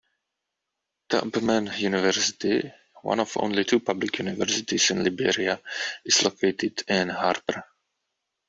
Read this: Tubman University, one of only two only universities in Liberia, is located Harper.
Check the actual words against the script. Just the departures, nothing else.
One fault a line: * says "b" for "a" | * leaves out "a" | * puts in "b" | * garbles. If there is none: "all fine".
* says "public" for "only"
* puts in "in"